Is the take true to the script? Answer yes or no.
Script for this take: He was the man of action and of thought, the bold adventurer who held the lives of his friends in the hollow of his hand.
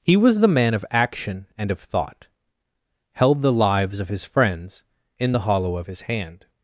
no